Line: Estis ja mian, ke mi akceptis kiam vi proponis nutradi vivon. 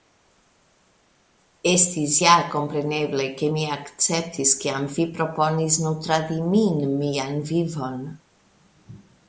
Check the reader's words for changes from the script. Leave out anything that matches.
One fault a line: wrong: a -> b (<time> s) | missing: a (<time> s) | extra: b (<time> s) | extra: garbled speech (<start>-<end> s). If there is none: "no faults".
wrong: mian -> kompreneble (2.5 s)
extra: min mian (6.5 s)